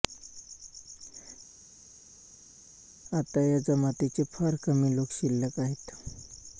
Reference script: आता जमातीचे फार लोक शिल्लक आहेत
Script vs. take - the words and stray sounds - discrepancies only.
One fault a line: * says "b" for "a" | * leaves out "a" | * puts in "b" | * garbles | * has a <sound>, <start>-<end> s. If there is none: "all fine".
* puts in "या"
* puts in "कमी"